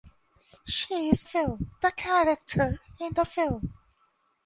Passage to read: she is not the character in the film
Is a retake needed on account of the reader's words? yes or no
yes